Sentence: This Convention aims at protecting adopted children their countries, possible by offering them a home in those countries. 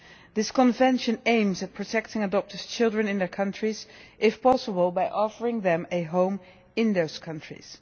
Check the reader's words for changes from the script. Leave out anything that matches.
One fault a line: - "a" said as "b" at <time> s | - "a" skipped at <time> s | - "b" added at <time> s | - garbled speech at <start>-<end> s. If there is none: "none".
- "in" added at 3.1 s
- "if" added at 4.2 s